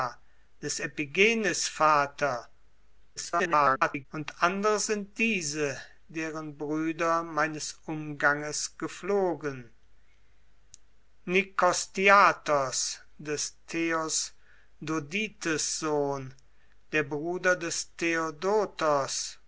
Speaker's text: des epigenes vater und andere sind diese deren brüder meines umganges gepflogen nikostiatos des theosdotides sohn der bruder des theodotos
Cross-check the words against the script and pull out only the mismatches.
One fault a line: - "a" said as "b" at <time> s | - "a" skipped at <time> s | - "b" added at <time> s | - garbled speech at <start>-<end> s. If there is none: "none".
- garbled speech at 3.2-4.1 s